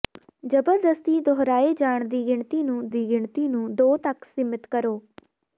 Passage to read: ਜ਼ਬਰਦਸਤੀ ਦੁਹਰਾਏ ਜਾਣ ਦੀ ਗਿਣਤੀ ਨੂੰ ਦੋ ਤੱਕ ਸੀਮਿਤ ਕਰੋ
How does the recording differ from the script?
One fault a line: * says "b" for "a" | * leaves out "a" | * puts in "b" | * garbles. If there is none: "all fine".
* puts in "ਦੀ ਗਿਣਤੀ ਨੂੰ"